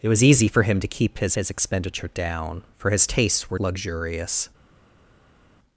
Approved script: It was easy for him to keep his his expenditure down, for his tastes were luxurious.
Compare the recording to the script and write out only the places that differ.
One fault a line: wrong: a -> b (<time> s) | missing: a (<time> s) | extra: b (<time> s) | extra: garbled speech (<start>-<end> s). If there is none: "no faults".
no faults